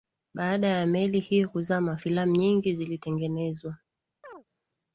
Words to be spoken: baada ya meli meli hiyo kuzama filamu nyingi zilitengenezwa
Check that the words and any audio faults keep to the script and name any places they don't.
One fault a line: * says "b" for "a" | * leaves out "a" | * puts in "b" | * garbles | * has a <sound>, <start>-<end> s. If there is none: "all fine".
* leaves out "meli"
* has a chirp, 4.2-4.4 s